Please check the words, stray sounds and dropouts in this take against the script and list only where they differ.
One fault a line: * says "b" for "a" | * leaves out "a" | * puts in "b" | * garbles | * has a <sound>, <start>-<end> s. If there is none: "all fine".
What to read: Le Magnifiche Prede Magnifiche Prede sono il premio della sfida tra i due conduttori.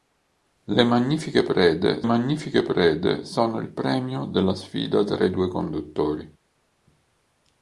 all fine